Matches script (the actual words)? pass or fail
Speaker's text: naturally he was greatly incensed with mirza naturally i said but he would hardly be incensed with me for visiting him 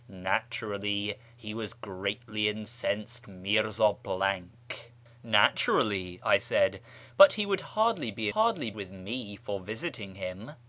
fail